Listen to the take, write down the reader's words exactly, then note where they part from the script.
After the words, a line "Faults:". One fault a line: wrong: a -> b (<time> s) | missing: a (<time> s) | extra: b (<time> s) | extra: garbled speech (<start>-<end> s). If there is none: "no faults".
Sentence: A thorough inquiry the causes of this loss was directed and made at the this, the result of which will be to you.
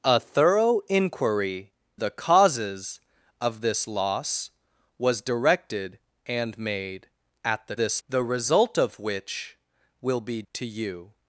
A thorough inquiry the causes of this loss was directed and made at the this, the result of which will be to you.
Faults:
no faults